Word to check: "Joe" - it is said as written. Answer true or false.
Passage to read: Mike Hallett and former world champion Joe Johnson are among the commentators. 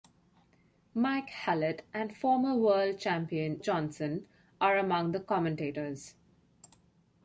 false